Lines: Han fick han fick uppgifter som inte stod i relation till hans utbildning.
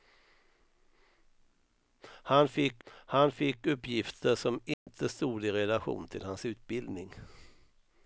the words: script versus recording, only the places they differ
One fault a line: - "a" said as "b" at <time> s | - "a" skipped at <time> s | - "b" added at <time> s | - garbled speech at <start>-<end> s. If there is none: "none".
none